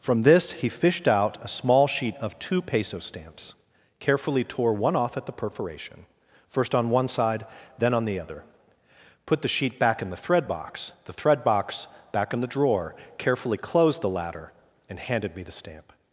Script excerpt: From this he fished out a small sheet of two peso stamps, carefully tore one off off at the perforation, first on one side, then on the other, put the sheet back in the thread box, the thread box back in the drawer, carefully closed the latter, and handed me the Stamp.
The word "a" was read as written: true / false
true